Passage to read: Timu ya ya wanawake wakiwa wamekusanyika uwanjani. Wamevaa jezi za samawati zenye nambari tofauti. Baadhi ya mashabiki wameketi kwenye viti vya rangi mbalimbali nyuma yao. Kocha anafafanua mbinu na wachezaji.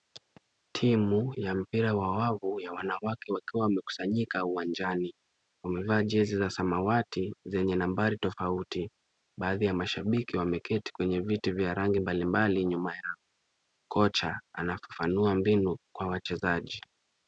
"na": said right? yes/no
no